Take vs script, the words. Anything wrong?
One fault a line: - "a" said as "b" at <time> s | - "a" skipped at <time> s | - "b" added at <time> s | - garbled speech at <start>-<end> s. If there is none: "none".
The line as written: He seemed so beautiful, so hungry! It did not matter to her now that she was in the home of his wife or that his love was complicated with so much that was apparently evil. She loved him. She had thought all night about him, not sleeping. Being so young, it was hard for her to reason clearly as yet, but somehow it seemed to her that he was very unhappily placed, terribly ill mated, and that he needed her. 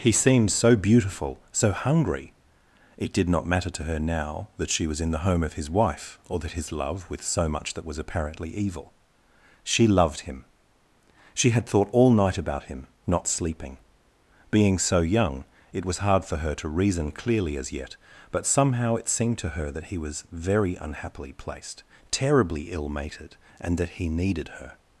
- "was complicated" skipped at 7.1 s